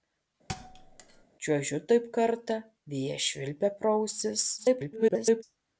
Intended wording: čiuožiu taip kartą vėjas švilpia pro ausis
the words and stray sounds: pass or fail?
fail